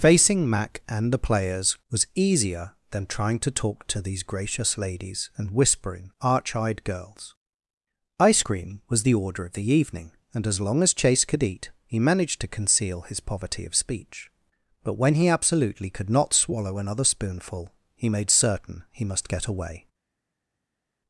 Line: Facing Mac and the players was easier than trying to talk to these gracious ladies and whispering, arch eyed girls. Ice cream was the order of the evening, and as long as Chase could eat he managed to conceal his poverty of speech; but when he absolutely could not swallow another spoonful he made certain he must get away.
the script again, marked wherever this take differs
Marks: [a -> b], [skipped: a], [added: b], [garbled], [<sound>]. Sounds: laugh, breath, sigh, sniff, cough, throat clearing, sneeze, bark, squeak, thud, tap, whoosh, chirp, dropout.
Facing Mac and the players was easier than trying to talk to these gracious ladies and whispering, arch eyed girls. Ice cream was the order of the evening, and as long as Chase could eat he managed to conceal his poverty of speech; but when he absolutely could not swallow another spoonful he made certain he must get away.